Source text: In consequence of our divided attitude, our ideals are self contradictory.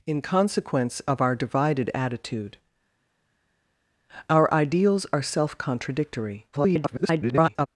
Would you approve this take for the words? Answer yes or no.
no